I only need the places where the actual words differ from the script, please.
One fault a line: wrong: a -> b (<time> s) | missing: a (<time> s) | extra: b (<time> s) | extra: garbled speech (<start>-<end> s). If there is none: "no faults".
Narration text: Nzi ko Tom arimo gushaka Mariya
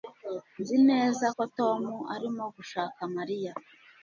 extra: neza (0.9 s)